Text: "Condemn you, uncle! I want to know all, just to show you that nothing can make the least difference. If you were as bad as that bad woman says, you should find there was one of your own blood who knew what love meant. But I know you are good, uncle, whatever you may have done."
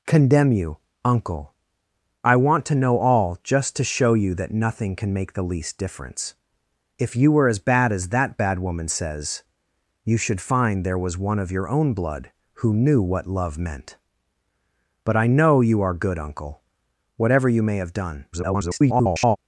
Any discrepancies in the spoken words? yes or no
yes